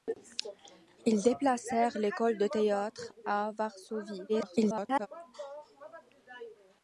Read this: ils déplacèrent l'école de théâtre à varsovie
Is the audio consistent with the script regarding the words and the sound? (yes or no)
no